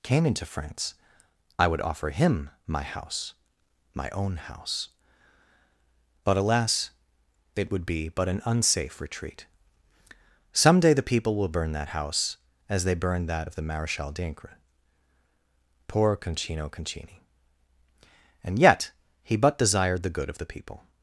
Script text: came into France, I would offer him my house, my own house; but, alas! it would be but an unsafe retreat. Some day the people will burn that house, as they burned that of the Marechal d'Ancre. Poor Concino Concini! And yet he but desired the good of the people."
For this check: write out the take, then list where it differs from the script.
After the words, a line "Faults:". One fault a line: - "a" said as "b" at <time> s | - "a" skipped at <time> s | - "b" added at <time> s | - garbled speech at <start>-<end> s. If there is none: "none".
came into France, I would offer him my house, my own house; but, alas! it would be but an unsafe retreat. Some day the people will burn that house, as they burned that of the Marechal d'Ancre. Poor Concino Concini! And yet he but desired the good of the people."
Faults:
none